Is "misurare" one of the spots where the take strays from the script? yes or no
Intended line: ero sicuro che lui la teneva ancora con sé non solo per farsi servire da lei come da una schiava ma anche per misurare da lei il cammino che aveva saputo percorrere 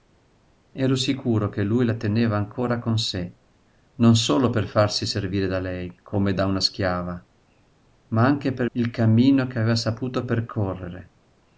yes